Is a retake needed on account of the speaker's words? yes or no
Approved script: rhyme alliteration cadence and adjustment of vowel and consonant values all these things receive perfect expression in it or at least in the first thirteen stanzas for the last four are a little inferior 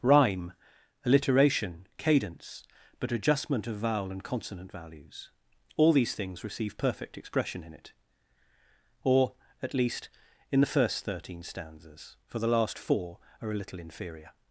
yes